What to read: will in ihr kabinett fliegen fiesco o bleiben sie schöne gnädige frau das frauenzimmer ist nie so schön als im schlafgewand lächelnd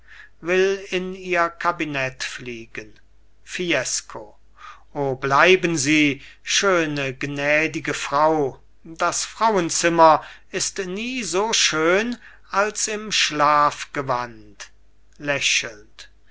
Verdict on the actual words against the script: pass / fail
pass